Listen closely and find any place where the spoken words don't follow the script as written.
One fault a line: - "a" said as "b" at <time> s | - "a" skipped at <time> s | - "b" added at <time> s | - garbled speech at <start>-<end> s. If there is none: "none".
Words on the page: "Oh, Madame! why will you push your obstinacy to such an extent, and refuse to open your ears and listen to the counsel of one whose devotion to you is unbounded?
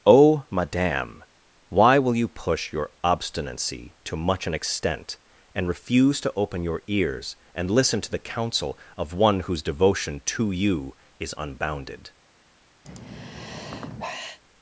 - "such" said as "much" at 4.1 s